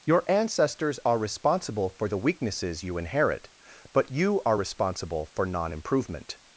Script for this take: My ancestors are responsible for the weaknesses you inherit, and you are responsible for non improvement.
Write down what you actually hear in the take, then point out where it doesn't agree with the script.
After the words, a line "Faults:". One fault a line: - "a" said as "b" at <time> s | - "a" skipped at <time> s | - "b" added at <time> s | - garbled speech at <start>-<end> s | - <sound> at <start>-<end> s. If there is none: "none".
Your ancestors are responsible for the weaknesses you inherit, but you are responsible for non improvement.
Faults:
- "My" said as "Your" at 0.1 s
- "and" said as "but" at 3.9 s